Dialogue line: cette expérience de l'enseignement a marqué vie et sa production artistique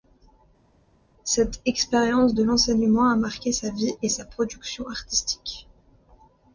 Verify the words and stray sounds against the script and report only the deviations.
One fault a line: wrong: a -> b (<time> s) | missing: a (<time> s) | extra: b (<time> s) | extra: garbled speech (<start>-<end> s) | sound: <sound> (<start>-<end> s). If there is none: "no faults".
extra: sa (3.5 s)